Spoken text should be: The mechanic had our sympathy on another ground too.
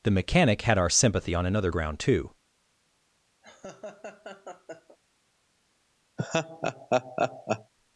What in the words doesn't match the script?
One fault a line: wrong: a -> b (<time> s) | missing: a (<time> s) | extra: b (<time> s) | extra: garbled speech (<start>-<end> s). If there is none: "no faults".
no faults